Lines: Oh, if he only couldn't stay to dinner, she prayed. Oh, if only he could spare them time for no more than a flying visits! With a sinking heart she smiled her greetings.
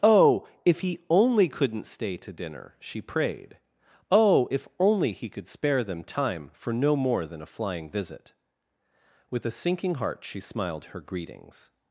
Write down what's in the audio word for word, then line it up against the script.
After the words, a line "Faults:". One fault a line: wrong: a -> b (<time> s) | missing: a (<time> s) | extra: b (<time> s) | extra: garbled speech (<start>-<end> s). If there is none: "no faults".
Oh, if he only couldn't stay to dinner, she prayed. Oh, if only he could spare them time for no more than a flying visit! With a sinking heart she smiled her greetings.
Faults:
wrong: visits -> visit (7.9 s)